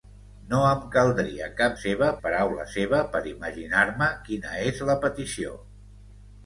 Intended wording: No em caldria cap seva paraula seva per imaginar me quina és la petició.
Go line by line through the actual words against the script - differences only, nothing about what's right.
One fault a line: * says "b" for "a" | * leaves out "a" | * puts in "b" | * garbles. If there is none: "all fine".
all fine